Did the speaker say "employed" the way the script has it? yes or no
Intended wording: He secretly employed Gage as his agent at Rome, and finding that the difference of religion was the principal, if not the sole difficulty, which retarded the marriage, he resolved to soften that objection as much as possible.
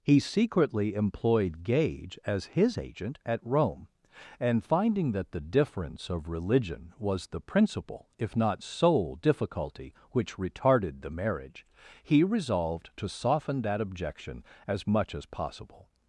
yes